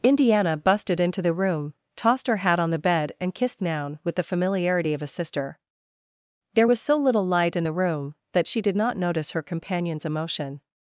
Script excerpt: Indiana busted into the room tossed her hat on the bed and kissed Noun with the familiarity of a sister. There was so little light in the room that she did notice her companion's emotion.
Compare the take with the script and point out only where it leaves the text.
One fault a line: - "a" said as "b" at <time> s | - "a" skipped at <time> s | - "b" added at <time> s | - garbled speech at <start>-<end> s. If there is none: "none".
- "not" added at 8.7 s